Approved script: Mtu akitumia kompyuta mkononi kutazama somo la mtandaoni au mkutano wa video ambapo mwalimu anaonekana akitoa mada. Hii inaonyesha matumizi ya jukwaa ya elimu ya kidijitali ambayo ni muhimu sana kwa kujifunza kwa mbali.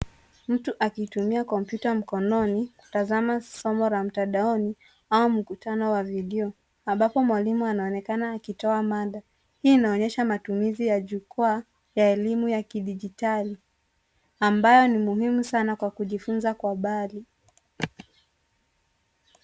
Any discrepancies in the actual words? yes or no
no